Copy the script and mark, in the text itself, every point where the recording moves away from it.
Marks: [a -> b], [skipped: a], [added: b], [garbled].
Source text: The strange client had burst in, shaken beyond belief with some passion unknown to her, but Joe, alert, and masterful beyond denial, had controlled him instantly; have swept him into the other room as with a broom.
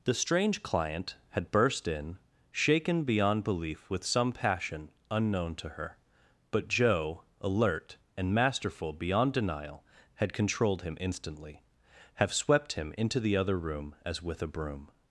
The strange client had burst in, shaken beyond belief with some passion unknown to her, but Joe, alert, and masterful beyond denial, had controlled him instantly; have swept him into the other room as with a broom.